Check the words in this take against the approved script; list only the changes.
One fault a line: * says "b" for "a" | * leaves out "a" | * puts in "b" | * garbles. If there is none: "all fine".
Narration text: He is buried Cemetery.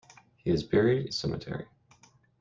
all fine